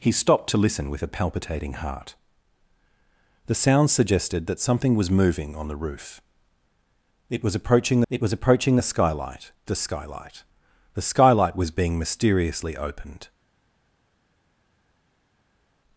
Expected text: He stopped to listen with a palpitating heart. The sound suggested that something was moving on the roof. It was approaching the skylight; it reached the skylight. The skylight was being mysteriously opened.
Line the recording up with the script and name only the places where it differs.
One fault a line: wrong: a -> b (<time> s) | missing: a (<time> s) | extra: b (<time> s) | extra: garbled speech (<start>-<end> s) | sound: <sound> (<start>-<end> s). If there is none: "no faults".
extra: it was approaching (8.1 s)
missing: it reached (9.5 s)